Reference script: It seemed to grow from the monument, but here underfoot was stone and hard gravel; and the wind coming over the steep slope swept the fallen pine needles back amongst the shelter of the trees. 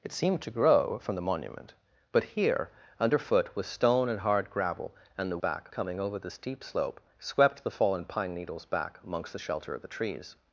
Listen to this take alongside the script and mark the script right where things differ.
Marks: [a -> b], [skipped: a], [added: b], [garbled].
It seemed to grow from the monument, but here underfoot was stone and hard gravel; and the [wind -> back] coming over the steep slope swept the fallen pine needles back amongst the shelter of the trees.